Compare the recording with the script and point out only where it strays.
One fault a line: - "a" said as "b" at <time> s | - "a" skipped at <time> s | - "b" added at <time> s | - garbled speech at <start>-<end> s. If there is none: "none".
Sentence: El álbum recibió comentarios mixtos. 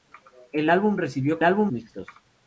- "comentarios" said as "álbum" at 1.4 s